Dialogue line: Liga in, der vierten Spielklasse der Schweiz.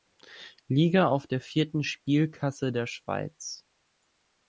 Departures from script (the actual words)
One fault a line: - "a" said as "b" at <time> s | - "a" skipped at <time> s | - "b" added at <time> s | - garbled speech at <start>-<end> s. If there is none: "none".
- "in" said as "auf" at 1.1 s